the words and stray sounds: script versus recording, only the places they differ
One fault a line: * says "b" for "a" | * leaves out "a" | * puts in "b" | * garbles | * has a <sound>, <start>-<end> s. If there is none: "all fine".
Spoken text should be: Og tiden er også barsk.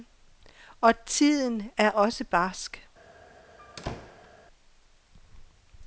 * has a squeak, 3.6-4.3 s